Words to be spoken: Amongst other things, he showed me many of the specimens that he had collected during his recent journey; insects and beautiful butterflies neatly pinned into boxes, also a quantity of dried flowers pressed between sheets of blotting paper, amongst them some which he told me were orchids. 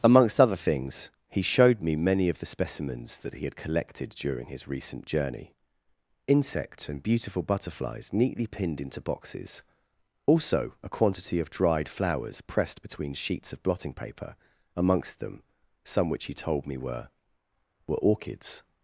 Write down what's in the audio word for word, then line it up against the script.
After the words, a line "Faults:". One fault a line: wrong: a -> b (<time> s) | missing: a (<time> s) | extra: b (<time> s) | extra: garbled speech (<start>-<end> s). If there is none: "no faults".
Amongst other things, he showed me many of the specimens that he had collected during his recent journey; insects and beautiful butterflies neatly pinned into boxes, also a quantity of dried flowers pressed between sheets of blotting paper, amongst them some which he told me were were orchids.
Faults:
extra: were (17.9 s)